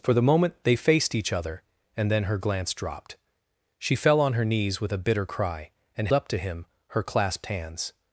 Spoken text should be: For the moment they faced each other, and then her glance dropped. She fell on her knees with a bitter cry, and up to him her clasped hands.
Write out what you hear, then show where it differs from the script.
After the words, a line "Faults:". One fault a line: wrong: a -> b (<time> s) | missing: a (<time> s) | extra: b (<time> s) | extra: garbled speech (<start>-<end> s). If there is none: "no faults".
For the moment they faced each other, and then her glance dropped. She fell on her knees with a bitter cry, and up to him her clasped hands.
Faults:
no faults